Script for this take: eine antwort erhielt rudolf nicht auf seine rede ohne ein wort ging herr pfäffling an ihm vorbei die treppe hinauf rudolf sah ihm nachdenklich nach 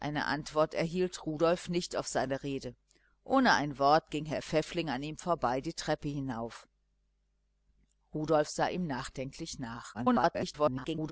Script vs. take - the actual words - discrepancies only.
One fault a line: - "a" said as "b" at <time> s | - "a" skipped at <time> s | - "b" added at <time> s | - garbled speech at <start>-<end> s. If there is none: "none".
- garbled speech at 9.9-11.1 s